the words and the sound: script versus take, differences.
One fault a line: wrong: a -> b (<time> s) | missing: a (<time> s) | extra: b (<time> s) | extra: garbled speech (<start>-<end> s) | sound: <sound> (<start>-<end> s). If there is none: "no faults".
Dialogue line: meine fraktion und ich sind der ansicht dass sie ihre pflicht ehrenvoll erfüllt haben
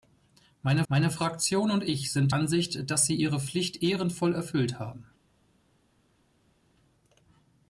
extra: meine (0.9 s)
missing: der (2.3 s)